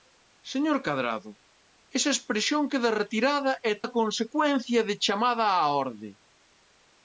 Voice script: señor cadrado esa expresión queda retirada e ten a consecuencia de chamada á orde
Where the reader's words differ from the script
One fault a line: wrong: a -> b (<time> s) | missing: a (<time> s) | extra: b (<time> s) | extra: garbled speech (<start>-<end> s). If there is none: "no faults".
missing: ten (3.7 s)